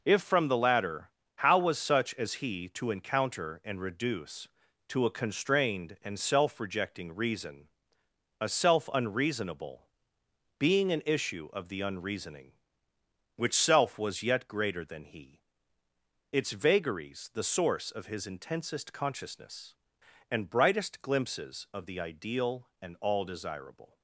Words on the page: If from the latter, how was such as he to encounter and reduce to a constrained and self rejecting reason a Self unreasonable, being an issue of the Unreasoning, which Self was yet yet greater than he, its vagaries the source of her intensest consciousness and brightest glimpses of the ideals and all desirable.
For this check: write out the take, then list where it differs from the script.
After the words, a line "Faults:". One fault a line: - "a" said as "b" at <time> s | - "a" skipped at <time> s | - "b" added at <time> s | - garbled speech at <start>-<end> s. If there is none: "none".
If from the latter, how was such as he to encounter and reduce to a constrained and self rejecting reason a Self unreasonable, being an issue of the Unreasoning, which Self was yet greater than he, its vagaries the source of his intensest consciousness and brightest glimpses of the ideal and all desirable.
Faults:
- "yet" skipped at 14.5 s
- "her" said as "his" at 18.1 s
- "ideals" said as "ideal" at 22.0 s